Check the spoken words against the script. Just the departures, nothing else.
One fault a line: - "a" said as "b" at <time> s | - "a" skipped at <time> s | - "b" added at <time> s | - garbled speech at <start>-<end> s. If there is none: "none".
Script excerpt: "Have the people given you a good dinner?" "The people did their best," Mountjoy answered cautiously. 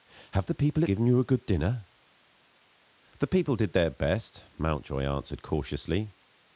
none